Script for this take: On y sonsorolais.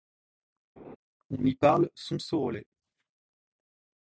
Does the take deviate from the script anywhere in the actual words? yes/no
yes